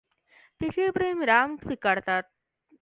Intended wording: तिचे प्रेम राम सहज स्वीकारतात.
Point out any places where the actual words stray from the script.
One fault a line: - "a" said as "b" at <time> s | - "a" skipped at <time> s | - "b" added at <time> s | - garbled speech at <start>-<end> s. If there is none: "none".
- "सहज" skipped at 1.6 s